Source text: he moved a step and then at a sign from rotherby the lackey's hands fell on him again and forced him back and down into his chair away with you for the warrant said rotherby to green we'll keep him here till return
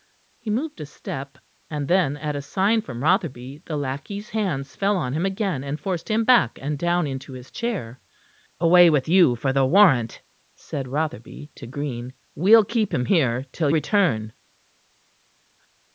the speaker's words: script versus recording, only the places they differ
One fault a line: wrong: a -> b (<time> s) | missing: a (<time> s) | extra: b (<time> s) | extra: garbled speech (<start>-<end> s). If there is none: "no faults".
no faults